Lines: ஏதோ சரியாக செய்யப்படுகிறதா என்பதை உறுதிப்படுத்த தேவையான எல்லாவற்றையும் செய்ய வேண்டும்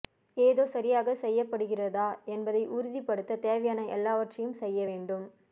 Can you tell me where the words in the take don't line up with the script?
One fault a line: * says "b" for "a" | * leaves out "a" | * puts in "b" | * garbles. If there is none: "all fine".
all fine